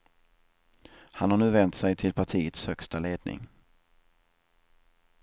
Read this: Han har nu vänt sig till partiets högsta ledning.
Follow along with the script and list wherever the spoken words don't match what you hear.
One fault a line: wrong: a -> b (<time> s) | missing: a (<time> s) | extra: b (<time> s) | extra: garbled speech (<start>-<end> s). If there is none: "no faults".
no faults